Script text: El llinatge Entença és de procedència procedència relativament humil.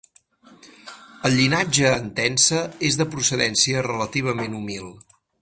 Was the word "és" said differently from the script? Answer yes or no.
no